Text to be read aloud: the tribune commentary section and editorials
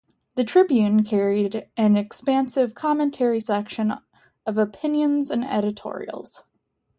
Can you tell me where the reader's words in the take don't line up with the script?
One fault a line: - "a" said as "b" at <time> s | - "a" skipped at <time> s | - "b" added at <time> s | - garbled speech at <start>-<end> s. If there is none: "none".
- "carried an expansive" added at 1.0 s
- "of opinions" added at 4.5 s